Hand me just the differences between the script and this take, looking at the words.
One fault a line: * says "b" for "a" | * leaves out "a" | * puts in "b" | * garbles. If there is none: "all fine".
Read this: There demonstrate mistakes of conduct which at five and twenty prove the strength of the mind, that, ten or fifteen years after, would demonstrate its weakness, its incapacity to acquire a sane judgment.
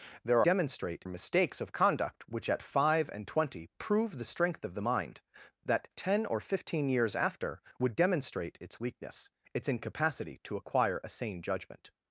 all fine